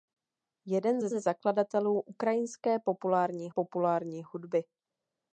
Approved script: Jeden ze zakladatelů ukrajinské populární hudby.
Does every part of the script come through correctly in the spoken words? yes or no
no